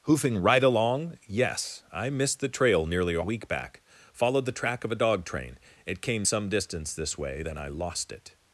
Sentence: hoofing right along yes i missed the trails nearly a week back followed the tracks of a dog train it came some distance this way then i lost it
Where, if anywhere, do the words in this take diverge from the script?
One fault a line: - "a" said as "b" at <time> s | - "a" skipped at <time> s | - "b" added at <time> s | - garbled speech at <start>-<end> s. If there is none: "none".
- "trails" said as "trail" at 2.5 s
- "tracks" said as "track" at 4.6 s